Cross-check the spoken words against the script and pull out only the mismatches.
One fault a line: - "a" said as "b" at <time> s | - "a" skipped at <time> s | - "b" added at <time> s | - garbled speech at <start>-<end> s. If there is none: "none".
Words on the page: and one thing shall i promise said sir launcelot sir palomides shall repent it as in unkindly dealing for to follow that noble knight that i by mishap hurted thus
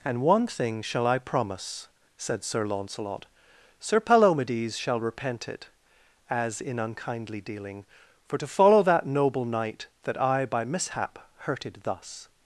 none